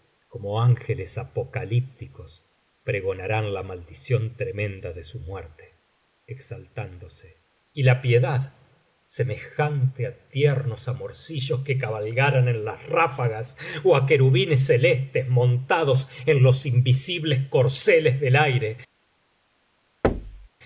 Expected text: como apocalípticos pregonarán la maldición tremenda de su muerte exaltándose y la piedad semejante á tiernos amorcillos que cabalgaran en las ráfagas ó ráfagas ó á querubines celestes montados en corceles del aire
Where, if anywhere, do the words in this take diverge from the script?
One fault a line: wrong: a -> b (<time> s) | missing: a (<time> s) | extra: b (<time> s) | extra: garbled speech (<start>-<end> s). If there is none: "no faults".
extra: ángeles (0.6 s)
missing: ráfagas ó (13.9 s)
extra: los invisibles (16.4 s)